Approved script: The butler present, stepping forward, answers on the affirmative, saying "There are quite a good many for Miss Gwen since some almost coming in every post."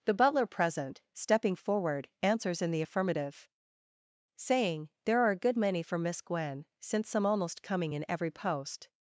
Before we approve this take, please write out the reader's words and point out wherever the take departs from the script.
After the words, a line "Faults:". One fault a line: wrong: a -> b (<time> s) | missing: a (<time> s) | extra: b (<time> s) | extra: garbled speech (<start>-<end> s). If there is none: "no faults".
The butler present, stepping forward, answers in the affirmative, saying "There are a good many for Miss Gwen since some almost coming in every post."
Faults:
wrong: on -> in (2.6 s)
missing: quite (5.3 s)